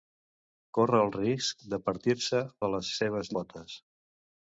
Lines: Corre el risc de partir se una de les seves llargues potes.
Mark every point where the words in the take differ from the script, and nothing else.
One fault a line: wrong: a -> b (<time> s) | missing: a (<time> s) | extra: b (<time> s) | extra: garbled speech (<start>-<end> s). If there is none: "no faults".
missing: una (2.4 s)
missing: llargues (3.3 s)